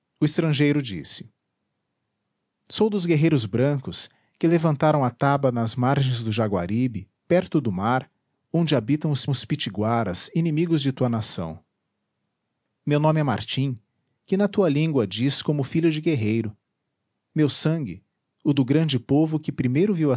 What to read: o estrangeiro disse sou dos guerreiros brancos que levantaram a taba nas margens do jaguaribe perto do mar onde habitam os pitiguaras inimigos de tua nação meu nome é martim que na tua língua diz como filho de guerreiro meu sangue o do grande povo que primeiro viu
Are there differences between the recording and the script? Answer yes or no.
yes